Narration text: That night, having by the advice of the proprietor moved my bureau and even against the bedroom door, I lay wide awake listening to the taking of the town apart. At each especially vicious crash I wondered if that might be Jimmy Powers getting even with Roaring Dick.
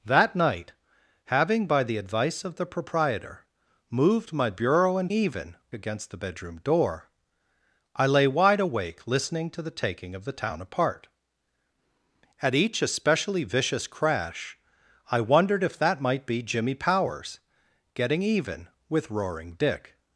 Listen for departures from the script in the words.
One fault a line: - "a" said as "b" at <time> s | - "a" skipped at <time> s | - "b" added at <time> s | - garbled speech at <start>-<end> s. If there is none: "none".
none